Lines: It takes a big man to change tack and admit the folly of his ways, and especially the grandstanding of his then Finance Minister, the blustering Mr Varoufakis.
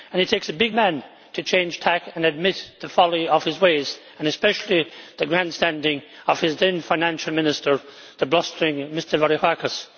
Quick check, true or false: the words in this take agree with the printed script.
true